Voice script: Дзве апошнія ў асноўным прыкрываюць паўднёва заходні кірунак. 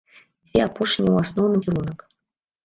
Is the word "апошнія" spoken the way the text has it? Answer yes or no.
yes